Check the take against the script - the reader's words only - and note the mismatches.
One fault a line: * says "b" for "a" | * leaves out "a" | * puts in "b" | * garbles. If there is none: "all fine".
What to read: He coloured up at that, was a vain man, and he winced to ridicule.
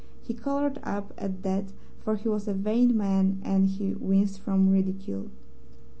* puts in "for he"
* says "from" for "to"